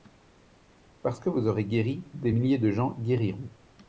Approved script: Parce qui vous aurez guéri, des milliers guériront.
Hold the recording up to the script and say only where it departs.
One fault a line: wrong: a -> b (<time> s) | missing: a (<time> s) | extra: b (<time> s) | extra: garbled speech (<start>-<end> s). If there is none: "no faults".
wrong: qui -> que (1.2 s)
extra: de gens (2.6 s)